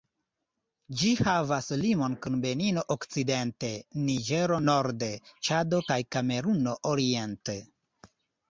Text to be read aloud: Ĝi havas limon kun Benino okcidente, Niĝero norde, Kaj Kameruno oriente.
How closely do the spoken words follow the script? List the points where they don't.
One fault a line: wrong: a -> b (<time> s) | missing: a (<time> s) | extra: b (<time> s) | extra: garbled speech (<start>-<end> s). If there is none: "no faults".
extra: Ĉado (5.5 s)